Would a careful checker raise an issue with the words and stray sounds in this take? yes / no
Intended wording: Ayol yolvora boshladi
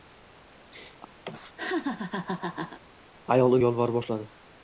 yes